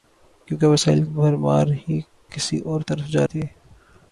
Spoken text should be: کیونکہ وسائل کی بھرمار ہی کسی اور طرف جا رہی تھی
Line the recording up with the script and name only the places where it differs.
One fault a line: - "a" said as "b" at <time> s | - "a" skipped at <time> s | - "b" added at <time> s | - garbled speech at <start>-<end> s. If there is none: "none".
- "کی" skipped at 1.0 s
- "رہی" skipped at 3.3 s